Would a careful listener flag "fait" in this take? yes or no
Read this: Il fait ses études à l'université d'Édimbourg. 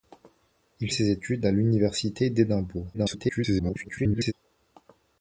yes